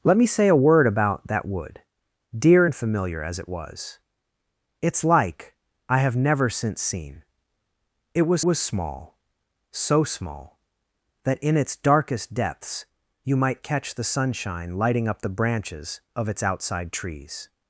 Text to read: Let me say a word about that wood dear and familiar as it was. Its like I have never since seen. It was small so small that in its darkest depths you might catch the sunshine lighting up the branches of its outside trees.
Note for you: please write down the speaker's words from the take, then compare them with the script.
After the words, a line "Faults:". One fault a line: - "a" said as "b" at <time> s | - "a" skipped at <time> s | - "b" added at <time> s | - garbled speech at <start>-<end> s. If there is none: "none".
Let me say a word about that wood dear and familiar as it was. Its like I have never since seen. It was was small so small that in its darkest depths you might catch the sunshine lighting up the branches of its outside trees.
Faults:
- "was" added at 8.4 s